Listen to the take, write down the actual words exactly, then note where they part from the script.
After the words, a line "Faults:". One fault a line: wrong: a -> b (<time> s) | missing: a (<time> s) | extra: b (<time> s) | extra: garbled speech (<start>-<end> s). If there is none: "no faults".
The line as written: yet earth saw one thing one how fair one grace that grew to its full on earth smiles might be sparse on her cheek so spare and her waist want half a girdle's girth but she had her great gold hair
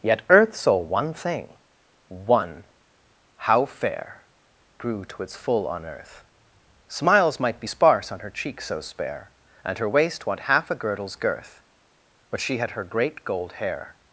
yet earth saw one thing one how fair grew to its full on earth smiles might be sparse on her cheek so spare and her waist want half a girdle's girth but she had her great gold hair
Faults:
missing: one grace that (4.2 s)